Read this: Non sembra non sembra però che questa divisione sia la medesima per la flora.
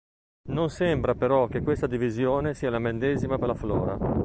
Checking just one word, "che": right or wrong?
right